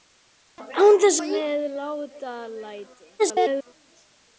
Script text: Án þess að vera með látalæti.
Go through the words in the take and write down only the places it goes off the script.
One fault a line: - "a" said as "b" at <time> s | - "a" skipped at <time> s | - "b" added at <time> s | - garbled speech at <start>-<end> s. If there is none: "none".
- "að vera" skipped at 1.2 s
- garbled speech at 3.2-3.7 s